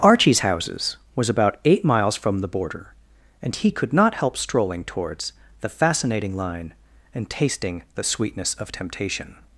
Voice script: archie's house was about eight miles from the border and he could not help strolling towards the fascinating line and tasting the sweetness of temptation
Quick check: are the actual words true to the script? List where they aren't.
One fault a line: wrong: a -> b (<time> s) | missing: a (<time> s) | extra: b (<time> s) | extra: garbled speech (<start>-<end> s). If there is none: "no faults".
wrong: house -> houses (0.4 s)